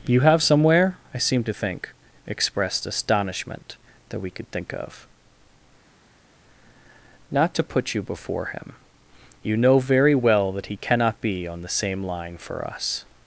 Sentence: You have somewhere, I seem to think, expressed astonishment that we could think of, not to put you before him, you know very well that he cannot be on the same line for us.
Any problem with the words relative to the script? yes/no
no